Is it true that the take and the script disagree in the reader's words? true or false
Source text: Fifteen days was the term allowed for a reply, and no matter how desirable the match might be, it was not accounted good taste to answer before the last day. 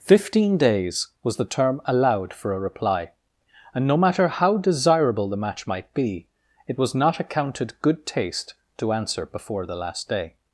false